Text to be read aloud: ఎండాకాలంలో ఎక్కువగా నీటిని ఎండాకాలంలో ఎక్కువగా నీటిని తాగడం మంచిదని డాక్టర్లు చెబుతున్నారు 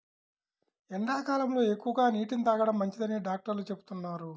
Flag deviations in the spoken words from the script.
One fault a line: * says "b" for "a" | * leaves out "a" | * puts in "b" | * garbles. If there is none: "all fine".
* leaves out "ఎండాకాలంలో ఎక్కువగా నీటిని"